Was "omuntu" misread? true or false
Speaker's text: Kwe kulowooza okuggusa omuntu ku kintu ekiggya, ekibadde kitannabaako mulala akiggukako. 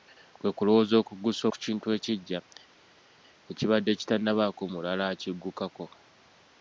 true